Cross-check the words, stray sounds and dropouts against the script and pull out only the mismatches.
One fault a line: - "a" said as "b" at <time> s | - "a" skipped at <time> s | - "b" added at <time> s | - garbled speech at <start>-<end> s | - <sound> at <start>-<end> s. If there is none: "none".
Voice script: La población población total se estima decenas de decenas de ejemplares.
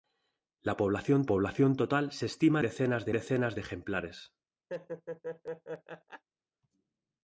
- laugh at 4.7-6.2 s